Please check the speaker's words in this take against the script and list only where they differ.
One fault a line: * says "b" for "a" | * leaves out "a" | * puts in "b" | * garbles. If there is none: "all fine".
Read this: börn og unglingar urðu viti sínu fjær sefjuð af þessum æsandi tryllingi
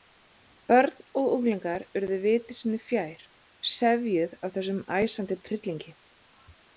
all fine